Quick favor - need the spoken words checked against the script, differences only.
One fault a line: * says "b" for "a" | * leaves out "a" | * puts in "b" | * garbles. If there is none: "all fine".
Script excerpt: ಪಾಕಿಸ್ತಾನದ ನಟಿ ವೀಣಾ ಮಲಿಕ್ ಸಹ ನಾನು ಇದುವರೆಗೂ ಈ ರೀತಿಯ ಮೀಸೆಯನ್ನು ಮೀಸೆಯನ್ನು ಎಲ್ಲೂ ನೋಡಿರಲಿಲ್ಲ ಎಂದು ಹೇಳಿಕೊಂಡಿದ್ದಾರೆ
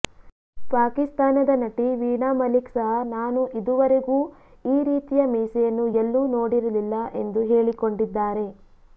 * leaves out "ಮೀಸೆಯನ್ನು"